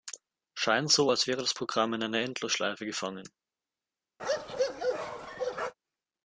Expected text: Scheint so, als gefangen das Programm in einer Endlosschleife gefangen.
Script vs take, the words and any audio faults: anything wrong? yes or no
yes